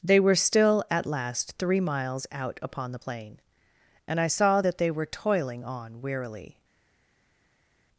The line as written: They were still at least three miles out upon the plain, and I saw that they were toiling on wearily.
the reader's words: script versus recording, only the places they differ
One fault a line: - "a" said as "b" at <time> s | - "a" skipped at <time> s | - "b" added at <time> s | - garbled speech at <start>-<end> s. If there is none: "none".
- "least" said as "last" at 1.1 s